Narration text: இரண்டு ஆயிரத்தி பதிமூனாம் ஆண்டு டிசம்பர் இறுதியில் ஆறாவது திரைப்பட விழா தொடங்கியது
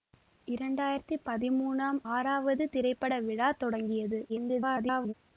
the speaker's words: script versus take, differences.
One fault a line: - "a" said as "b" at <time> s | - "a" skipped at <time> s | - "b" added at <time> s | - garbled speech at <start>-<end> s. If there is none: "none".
- "ஆண்டு டிசம்பர் இறுதியில்" skipped at 2.0 s
- garbled speech at 4.3-5.1 s